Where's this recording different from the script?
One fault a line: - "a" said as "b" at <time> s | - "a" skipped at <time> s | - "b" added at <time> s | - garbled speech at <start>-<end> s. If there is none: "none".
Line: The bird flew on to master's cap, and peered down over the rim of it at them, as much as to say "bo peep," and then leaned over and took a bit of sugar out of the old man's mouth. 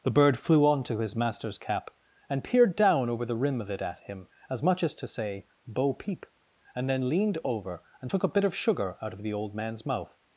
- "his" added at 1.0 s
- "them" said as "him" at 4.0 s